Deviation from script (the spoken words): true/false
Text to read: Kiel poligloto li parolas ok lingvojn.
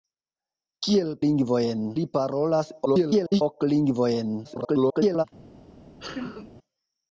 true